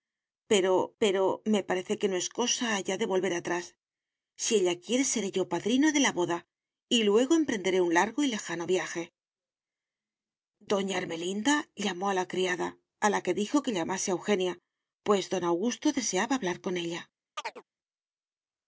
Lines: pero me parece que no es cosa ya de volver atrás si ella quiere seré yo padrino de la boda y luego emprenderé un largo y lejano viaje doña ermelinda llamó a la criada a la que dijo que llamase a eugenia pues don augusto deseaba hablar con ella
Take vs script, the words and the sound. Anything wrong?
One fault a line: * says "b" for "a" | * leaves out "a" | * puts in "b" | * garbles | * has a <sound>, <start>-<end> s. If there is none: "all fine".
* puts in "pero"
* has a chirp, 17.4-17.6 s